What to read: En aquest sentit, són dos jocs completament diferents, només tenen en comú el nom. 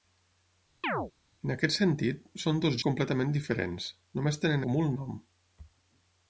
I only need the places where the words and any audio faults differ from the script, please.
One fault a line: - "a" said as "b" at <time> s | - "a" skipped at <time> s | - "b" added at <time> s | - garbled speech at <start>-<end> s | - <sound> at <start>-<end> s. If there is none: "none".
- chirp at 0.8-1.1 s
- "jocs" skipped at 2.8 s
- "en" skipped at 4.6 s